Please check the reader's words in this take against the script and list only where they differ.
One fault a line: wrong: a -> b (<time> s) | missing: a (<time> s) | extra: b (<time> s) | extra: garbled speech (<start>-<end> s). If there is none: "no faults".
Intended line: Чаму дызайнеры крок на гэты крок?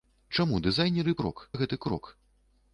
no faults